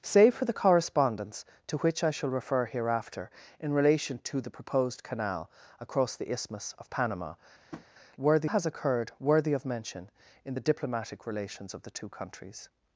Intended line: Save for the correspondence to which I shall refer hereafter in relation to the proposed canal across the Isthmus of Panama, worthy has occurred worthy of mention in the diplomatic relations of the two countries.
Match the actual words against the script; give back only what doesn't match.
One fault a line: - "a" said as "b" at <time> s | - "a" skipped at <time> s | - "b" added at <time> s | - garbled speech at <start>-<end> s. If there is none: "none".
none